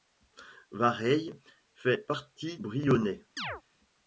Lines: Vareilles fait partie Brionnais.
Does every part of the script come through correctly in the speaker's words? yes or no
yes